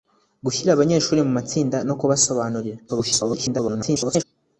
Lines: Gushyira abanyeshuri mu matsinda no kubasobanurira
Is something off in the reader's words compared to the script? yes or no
yes